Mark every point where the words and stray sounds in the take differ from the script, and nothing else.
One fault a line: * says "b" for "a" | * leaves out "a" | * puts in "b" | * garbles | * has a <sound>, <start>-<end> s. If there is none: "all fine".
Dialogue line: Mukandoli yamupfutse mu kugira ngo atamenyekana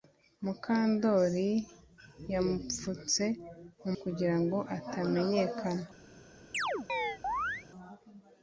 * has a chirp, 6.5-7.7 s